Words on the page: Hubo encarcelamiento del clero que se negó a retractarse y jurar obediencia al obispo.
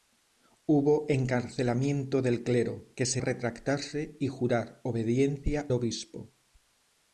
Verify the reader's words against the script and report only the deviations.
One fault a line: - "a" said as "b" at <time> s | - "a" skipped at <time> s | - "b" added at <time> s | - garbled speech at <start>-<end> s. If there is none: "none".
- "negó" skipped at 3.2 s
- "al" skipped at 5.7 s